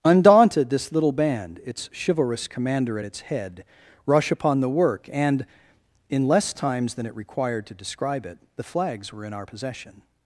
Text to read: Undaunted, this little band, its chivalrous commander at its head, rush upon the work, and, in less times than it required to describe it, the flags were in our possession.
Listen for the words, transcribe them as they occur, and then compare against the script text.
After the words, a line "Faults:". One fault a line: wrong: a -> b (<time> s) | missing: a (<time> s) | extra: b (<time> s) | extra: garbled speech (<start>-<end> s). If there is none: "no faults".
Undaunted, this little band, its chivalrous commander at its head, rush upon the work, and, in less times than it required to describe it, the flags were in our possession.
Faults:
no faults